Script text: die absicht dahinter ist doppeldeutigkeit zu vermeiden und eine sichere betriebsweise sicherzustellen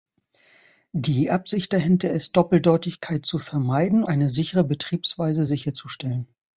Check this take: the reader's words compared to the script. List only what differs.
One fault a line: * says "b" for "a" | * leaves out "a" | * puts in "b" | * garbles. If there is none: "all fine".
* leaves out "und"